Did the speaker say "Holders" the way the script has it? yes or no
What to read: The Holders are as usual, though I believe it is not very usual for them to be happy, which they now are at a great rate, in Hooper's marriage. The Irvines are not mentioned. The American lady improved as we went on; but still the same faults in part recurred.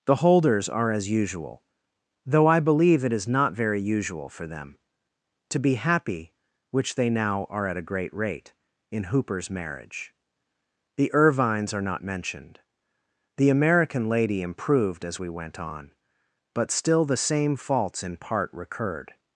yes